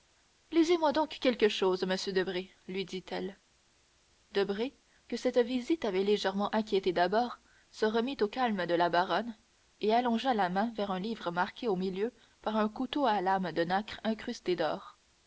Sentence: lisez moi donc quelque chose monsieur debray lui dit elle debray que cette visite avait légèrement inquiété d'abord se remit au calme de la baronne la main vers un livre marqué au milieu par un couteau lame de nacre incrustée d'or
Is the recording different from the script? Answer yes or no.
yes